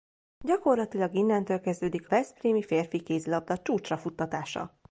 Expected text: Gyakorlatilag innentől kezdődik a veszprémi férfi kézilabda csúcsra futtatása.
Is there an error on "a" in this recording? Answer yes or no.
yes